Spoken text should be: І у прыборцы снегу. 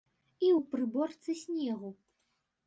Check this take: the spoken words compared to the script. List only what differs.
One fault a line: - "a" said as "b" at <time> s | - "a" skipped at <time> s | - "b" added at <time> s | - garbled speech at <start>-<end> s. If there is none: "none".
none